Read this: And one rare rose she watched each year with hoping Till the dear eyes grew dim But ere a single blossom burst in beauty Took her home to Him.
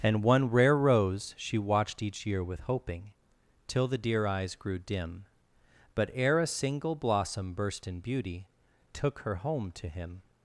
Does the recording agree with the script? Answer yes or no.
yes